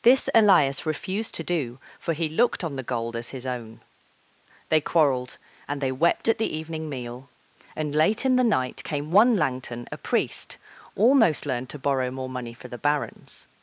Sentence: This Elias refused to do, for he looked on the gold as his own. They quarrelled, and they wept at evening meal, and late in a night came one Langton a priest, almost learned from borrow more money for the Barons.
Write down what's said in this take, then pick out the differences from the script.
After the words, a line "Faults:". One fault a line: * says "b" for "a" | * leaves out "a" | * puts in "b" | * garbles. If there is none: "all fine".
This Elias refused to do, for he looked on the gold as his own. They quarrelled, and they wept at the evening meal, and late in the night came one Langton a priest, almost learned to borrow more money for the Barons.
Faults:
* puts in "the"
* says "the" for "a"
* says "to" for "from"